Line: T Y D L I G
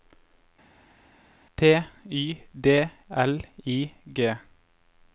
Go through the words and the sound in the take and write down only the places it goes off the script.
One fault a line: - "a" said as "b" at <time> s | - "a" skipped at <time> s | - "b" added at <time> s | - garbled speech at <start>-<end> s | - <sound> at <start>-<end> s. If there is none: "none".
none